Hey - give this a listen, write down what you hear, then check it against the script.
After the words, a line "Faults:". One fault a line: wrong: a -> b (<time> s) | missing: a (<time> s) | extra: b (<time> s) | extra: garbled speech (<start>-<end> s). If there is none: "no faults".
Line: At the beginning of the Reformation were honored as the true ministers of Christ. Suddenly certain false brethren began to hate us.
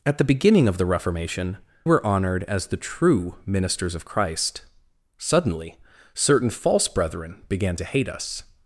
At the beginning of the Reformation were honored as the true ministers of Christ. Suddenly certain false brethren began to hate us.
Faults:
no faults